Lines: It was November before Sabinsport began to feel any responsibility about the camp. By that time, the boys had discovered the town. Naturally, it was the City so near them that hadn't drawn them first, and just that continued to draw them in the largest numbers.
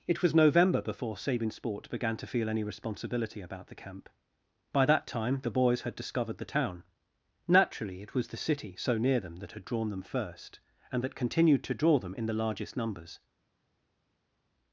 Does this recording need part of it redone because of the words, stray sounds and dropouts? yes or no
yes